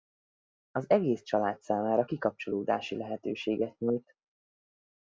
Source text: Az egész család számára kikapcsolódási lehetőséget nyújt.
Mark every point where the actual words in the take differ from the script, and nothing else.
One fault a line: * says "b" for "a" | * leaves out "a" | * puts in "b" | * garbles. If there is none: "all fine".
all fine